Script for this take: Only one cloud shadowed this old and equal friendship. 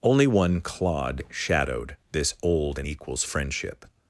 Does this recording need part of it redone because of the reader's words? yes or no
yes